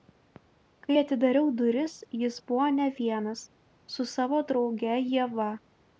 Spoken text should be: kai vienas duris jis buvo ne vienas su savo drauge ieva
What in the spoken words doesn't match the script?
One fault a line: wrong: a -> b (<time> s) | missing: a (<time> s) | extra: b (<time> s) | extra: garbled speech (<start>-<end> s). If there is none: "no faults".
wrong: vienas -> atidariau (1.0 s)